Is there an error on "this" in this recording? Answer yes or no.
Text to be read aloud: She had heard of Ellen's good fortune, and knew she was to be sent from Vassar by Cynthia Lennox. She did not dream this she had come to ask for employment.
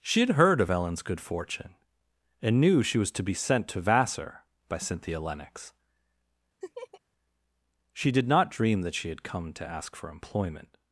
yes